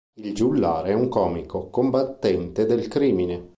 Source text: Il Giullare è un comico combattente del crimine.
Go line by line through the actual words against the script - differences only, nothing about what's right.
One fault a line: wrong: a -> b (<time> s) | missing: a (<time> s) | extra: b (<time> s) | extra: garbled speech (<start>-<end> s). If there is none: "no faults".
no faults